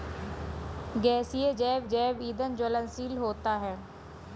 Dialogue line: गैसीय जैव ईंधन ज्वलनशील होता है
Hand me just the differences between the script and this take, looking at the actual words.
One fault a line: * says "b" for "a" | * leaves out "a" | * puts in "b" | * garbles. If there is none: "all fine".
* puts in "जैव"